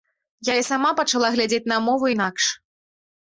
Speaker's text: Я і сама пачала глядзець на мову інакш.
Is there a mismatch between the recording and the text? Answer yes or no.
no